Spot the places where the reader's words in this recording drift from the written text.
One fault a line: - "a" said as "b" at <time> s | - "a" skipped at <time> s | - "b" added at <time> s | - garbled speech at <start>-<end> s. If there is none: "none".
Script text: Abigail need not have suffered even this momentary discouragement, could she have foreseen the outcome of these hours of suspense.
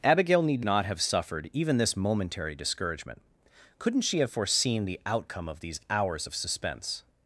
- "could" said as "couldn't" at 3.8 s